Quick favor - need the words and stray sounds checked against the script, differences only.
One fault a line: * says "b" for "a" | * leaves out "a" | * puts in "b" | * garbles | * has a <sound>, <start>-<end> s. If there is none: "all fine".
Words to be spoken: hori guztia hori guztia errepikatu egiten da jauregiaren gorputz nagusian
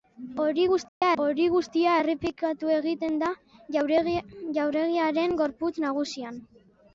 * has a dropout, 0.9-1.0 s